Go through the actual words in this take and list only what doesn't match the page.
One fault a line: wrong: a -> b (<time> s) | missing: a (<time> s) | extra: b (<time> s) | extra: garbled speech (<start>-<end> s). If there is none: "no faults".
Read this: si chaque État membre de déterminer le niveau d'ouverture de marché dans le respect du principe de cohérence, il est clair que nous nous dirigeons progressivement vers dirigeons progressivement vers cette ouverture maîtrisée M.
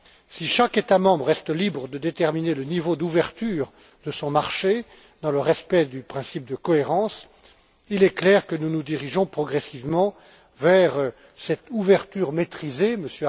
extra: reste libre (1.2 s)
extra: son (4.1 s)
missing: dirigeons progressivement vers (10.9 s)